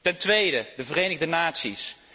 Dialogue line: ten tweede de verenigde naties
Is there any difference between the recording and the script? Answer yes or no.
no